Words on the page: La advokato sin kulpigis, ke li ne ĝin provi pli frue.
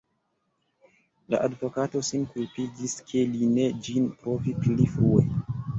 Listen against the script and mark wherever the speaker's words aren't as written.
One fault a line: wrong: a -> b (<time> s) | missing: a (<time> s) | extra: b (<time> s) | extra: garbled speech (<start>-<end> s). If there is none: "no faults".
no faults